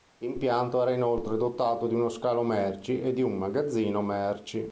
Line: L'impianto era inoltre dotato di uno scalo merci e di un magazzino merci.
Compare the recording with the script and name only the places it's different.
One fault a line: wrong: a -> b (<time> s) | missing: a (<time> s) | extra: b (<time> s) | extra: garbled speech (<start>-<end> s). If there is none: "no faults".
no faults